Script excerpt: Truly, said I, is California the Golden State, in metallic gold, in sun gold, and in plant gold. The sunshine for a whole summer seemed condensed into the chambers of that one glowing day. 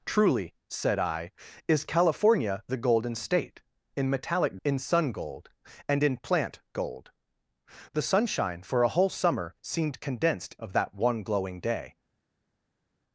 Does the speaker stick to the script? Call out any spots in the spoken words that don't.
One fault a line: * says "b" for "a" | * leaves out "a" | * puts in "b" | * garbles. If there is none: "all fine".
* leaves out "gold"
* leaves out "into the chambers"